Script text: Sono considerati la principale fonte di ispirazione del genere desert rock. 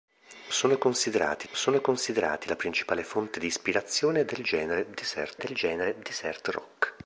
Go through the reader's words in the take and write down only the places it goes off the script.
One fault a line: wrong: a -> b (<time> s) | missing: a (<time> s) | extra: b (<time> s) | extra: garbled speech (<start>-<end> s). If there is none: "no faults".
extra: sono considerati (1.5 s)
extra: del genere desert (5.4 s)